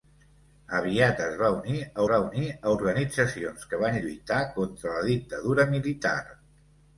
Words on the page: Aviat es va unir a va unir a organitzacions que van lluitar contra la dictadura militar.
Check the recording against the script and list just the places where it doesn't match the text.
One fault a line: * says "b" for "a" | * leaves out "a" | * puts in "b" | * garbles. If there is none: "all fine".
all fine